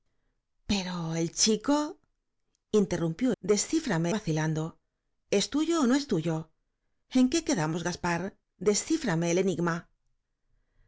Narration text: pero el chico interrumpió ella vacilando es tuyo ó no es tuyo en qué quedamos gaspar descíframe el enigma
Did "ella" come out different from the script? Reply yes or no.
yes